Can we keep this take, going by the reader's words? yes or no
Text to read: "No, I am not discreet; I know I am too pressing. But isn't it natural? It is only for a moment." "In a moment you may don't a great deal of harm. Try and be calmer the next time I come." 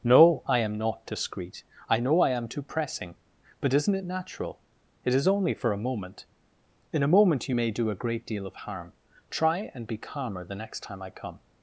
no